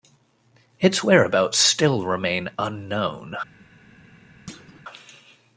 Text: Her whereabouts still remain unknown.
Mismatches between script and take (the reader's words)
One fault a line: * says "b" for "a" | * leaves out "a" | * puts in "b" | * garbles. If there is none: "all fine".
* says "Its" for "Her"